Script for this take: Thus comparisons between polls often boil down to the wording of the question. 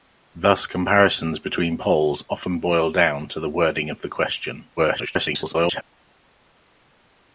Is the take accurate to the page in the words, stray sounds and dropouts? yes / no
no